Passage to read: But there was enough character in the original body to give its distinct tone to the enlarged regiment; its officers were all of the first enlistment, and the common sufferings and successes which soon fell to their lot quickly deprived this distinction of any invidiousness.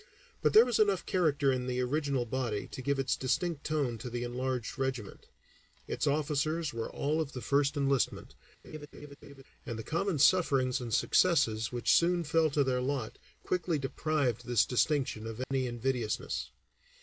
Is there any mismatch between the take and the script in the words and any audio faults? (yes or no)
yes